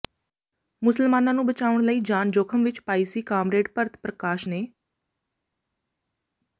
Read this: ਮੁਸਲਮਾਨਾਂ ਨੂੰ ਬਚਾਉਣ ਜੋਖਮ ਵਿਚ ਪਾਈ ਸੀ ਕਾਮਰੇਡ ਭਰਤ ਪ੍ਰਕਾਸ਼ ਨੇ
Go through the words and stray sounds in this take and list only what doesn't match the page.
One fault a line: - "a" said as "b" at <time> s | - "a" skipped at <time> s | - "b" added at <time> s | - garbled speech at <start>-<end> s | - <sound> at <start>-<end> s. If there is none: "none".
- "ਲਈ ਜਾਨ" added at 1.8 s